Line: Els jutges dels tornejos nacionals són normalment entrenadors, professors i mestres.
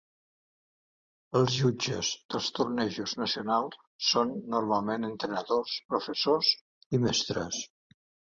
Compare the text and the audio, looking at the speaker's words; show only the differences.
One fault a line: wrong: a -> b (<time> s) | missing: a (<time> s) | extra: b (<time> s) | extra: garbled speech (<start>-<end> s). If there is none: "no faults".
no faults